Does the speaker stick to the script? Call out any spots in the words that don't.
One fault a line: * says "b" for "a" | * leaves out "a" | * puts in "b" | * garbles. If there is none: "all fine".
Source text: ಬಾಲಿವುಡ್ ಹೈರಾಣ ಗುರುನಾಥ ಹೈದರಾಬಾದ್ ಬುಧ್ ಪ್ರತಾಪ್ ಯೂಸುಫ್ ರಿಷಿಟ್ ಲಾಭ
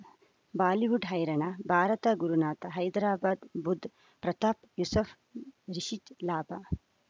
* puts in "ಭಾರತ"